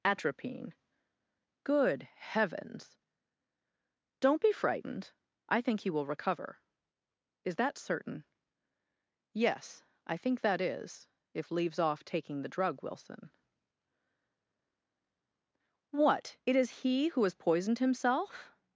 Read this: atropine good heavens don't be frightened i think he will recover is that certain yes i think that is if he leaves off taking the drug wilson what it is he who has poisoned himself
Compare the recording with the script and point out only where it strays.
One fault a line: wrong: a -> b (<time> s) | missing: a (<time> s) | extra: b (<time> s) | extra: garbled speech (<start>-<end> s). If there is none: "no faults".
missing: he (11.5 s)